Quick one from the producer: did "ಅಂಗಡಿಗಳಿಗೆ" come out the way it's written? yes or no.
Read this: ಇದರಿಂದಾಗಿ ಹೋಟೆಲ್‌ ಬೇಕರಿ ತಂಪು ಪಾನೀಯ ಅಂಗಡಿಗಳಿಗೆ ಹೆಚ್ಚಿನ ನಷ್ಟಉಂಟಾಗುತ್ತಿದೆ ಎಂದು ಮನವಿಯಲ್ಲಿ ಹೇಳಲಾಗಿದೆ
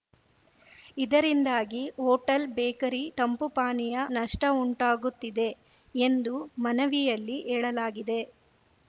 no